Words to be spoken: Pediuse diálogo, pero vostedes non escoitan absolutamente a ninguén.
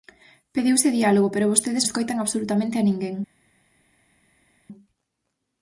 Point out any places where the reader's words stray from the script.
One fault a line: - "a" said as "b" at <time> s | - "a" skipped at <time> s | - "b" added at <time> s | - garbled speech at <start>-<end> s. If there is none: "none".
- "non" skipped at 1.8 s